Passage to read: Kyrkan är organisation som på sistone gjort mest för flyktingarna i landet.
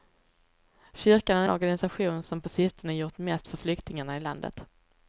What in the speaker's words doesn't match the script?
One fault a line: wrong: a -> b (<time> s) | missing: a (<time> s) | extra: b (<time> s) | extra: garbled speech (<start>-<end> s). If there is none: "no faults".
no faults